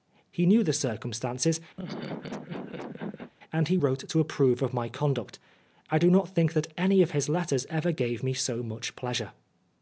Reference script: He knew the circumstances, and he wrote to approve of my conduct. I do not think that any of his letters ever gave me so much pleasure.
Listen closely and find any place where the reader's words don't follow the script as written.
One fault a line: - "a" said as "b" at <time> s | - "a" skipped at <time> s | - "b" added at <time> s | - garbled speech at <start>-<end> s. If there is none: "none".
none